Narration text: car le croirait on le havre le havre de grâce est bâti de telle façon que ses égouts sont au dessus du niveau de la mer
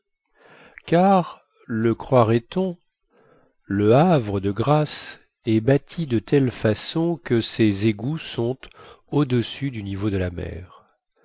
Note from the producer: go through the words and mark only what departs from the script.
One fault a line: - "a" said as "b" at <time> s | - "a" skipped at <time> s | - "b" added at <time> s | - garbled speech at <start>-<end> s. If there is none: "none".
- "le havre" skipped at 4.4 s